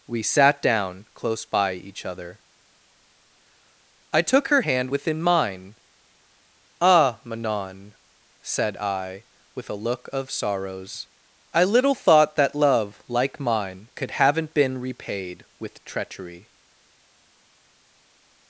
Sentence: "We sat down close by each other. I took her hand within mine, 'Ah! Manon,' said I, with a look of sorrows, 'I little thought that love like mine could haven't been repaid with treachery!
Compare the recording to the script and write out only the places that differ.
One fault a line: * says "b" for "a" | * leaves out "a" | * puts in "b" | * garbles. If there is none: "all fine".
all fine